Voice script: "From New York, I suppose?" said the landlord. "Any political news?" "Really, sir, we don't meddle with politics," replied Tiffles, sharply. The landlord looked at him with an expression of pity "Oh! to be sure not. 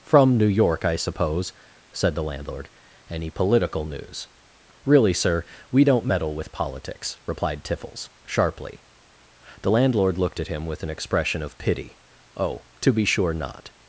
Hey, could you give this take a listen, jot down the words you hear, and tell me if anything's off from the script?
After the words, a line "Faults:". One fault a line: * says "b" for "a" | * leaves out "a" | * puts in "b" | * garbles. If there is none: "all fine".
"From New York, I suppose?" said the landlord. "Any political news?" "Really, sir, we don't meddle with politics," replied Tiffles, sharply. The landlord looked at him with an expression of pity "Oh! to be sure not.
Faults:
all fine